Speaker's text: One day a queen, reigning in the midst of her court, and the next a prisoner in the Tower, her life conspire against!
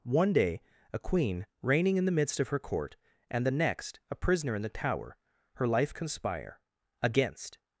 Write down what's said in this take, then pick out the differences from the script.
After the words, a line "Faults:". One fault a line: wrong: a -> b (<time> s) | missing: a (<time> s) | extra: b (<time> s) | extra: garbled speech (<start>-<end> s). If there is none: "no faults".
One day a queen, reigning in the midst of her court, and the next a prisoner in the Tower, her life conspire against!
Faults:
no faults